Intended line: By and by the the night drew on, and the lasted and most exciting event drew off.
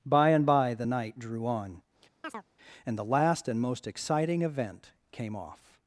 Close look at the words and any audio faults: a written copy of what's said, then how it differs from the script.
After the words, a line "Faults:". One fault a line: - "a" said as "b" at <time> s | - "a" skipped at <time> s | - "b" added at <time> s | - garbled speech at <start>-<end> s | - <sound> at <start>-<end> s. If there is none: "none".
By and by the night drew on, and the last and most exciting event came off.
Faults:
- "the" skipped at 0.9 s
- chirp at 2.2-2.4 s
- "lasted" said as "last" at 3.0 s
- "drew" said as "came" at 5.1 s